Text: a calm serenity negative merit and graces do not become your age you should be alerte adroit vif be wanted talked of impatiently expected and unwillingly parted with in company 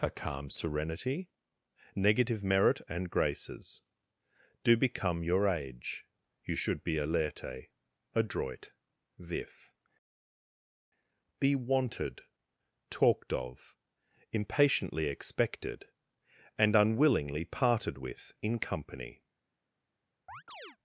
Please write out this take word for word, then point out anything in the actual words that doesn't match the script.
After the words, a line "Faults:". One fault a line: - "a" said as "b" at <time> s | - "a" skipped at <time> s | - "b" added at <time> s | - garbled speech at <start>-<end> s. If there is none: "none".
a calm serenity negative merit and graces do become your age you should be alerte adroit vif be wanted talked of impatiently expected and unwillingly parted with in company
Faults:
- "not" skipped at 4.8 s